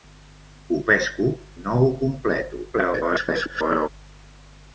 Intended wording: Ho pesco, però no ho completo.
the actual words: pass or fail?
fail